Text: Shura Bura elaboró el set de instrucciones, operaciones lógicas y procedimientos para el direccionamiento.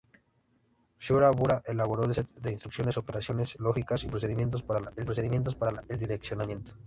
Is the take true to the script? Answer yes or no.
no